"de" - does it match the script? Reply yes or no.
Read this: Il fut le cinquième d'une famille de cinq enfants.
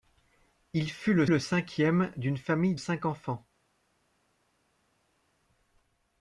no